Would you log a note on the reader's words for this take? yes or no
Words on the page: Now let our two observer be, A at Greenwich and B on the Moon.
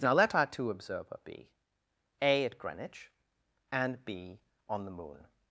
no